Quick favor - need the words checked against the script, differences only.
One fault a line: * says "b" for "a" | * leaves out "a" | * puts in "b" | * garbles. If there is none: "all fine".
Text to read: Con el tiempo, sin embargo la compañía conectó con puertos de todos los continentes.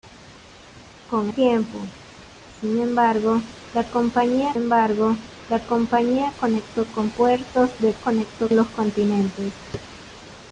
* leaves out "el"
* puts in "embargo la compañía"
* says "conectó" for "todos"